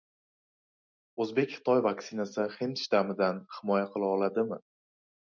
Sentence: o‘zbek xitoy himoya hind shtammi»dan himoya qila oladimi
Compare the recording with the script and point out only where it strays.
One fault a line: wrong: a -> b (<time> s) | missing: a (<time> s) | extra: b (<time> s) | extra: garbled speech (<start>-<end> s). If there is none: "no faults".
wrong: himoya -> vaksinasi (1.9 s)